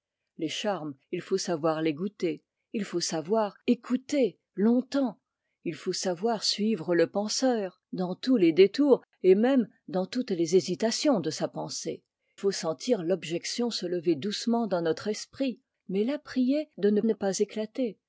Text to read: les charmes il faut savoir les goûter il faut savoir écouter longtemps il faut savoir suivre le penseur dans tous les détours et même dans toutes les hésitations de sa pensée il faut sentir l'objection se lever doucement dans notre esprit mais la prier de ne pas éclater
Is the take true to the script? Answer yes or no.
no